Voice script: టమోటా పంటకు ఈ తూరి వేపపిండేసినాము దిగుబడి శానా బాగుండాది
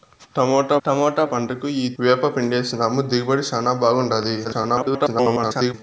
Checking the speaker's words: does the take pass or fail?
fail